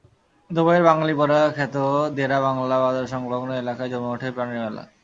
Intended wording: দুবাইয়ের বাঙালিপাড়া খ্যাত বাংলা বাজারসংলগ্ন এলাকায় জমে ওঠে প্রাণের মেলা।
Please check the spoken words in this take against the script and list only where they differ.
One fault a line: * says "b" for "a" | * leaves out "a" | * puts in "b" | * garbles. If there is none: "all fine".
* puts in "দেরা"